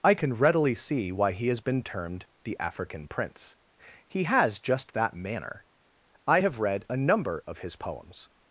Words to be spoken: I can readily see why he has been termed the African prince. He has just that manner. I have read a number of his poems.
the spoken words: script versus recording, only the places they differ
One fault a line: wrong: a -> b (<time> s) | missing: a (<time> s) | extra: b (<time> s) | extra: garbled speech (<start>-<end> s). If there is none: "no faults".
no faults